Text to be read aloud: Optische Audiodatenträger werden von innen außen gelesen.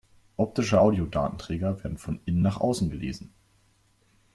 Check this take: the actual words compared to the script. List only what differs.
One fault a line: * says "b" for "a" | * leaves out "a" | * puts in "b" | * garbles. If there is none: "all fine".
* puts in "nach"